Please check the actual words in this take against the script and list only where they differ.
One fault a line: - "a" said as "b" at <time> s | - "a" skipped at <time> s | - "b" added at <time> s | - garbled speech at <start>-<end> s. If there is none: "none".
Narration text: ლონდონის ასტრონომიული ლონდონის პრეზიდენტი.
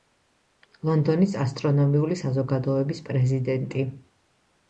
- "ლონდონის" said as "საზოგადოების" at 2.2 s